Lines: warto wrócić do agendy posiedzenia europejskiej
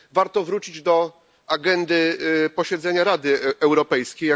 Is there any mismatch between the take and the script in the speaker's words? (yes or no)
yes